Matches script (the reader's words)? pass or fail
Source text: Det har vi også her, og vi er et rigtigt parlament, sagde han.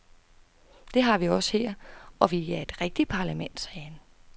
pass